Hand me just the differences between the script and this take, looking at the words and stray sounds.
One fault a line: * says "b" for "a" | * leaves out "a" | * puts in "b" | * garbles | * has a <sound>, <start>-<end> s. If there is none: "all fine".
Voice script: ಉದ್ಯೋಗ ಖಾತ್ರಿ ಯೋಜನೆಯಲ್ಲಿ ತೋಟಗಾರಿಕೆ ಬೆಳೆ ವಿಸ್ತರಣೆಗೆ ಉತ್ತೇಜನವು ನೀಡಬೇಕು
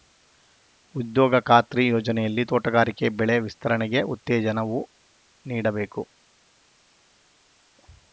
all fine